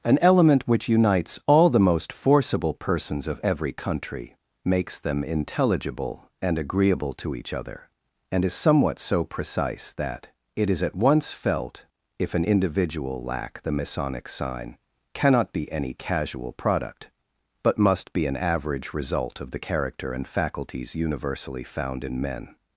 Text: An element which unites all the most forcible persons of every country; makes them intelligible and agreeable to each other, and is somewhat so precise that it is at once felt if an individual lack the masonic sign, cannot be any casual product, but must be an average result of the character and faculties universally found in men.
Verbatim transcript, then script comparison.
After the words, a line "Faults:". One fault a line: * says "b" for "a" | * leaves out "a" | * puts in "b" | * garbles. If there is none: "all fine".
An element which unites all the most forcible persons of every country; makes them intelligible and agreeable to each other, and is somewhat so precise that it is at once felt if an individual lack the masonic sign, cannot be any casual product, but must be an average result of the character and faculties universally found in men.
Faults:
all fine